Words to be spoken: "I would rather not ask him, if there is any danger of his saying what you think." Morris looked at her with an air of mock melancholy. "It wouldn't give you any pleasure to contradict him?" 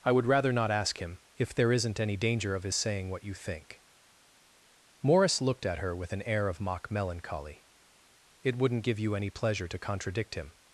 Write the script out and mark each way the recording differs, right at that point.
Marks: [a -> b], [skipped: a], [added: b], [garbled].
"I would rather not ask him, if there [is -> isn't] any danger of his saying what you think." Morris looked at her with an air of mock melancholy. "It wouldn't give you any pleasure to contradict him?"